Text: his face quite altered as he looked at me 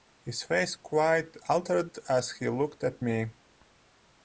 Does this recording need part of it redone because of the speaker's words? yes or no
no